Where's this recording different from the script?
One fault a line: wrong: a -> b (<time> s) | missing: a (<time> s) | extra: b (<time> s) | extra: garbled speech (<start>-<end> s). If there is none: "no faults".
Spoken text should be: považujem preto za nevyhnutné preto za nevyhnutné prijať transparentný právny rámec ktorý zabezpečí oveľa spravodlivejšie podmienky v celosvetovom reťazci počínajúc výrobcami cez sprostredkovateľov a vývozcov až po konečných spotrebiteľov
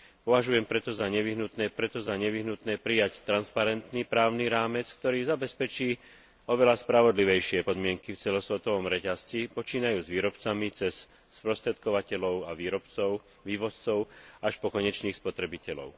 no faults